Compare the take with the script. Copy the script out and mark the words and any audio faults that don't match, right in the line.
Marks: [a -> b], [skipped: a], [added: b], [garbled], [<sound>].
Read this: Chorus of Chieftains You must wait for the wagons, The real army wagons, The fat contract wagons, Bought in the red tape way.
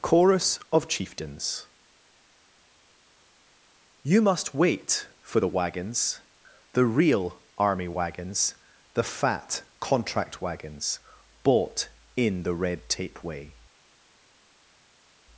Chorus of Chieftains You must wait for the wagons, The real army wagons, The fat contract wagons, Bought in the red tape way.